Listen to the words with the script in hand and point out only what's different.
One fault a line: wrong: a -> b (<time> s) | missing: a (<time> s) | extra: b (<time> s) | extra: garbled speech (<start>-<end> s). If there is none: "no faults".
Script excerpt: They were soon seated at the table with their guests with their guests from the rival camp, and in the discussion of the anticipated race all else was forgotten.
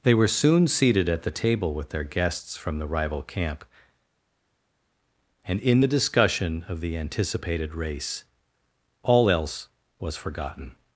missing: with their guests (2.6 s)